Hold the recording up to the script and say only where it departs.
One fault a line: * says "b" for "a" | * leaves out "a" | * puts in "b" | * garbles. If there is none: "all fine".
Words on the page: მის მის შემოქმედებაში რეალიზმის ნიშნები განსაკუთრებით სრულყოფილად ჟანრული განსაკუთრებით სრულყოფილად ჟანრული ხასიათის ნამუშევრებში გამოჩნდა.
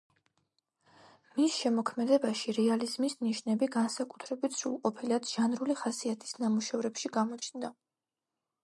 * leaves out "მის"
* leaves out "განსაკუთრებით სრულყოფილად ჟანრული"